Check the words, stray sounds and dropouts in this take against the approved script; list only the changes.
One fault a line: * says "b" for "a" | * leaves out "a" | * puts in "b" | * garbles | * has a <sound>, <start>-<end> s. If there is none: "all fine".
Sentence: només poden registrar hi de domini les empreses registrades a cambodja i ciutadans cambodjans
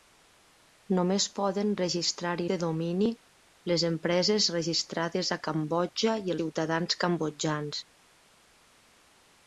all fine